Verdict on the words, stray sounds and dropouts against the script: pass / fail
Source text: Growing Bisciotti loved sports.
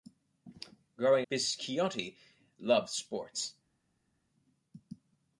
pass